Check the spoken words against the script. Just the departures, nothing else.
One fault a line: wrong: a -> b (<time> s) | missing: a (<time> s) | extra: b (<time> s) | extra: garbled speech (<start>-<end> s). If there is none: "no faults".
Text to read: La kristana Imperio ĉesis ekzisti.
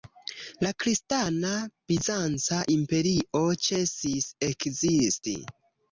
extra: Bizanca (1.9 s)